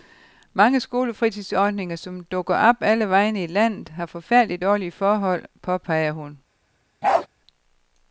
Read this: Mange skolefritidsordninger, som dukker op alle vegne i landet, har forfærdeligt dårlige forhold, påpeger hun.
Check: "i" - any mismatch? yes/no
no